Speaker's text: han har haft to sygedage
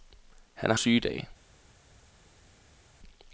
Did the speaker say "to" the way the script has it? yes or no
no